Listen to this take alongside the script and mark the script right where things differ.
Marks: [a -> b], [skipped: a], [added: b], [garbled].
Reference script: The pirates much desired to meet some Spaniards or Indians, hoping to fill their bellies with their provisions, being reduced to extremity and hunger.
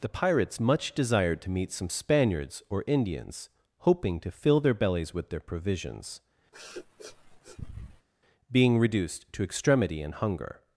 The pirates much desired to meet some Spaniards or Indians, hoping to fill their bellies with their provisions, being reduced to extremity and hunger.